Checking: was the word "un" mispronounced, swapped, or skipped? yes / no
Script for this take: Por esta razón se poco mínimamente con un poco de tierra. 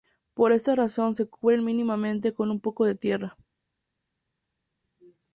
no